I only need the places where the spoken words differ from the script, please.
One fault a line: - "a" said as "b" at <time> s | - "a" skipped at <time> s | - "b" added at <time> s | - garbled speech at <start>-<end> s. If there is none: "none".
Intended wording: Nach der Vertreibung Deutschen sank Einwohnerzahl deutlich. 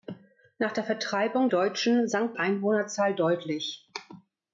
none